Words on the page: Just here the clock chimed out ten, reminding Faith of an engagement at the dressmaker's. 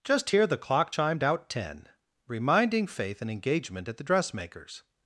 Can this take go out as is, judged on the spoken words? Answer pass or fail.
fail